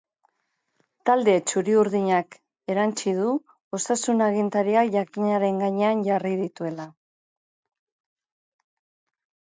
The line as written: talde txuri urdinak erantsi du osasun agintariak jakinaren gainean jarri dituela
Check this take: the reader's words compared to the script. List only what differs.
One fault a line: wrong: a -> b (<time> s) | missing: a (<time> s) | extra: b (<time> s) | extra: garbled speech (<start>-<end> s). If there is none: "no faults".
no faults